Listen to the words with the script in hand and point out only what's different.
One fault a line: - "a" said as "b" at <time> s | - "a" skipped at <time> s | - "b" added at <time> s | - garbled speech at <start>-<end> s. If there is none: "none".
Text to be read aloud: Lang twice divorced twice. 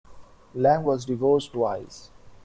- "twice" said as "was" at 0.8 s